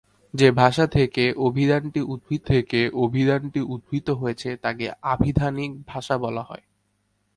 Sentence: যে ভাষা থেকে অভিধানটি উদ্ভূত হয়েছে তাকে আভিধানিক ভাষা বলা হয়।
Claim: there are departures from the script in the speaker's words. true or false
true